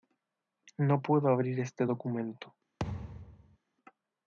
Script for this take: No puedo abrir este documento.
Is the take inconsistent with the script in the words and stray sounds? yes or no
yes